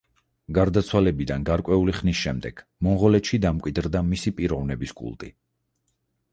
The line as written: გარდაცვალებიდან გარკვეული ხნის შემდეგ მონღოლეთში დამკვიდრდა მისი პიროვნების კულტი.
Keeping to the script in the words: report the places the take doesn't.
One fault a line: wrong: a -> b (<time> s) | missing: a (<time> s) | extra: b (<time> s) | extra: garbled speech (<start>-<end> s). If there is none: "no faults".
no faults